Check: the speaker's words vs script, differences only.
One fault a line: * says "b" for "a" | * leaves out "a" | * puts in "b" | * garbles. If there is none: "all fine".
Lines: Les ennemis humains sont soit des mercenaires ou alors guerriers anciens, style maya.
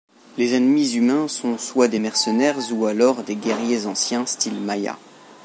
* puts in "des"